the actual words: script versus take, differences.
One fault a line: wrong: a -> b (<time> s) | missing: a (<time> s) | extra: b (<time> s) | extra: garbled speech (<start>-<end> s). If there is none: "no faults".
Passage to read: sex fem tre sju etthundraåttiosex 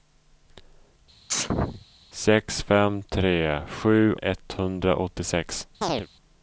no faults